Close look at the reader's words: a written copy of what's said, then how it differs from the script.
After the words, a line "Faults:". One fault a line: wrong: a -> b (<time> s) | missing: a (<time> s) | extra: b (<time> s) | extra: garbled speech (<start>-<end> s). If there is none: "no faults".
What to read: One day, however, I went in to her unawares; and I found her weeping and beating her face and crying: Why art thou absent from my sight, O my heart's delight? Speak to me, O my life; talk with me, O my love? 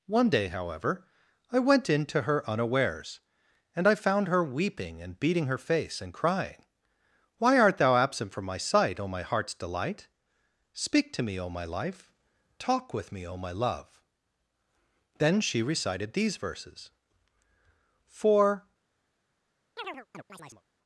One day, however, I went in to her unawares; and I found her weeping and beating her face and crying: Why art thou absent from my sight, O my heart's delight? Speak to me, O my life; talk with me, O my love? Then she recited these verses: For
Faults:
extra: Then she recited these verses For (15.2 s)